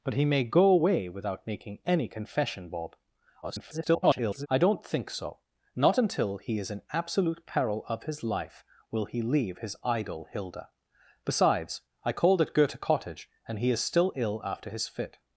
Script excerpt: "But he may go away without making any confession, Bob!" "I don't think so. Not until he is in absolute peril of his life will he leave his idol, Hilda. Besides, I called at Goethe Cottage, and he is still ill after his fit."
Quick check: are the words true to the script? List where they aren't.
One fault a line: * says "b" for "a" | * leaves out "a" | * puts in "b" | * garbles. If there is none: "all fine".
* garbles